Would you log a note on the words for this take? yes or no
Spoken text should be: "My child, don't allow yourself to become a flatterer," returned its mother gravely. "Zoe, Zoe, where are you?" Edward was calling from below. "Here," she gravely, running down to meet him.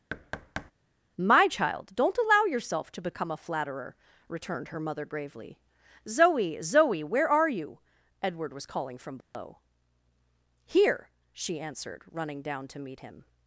yes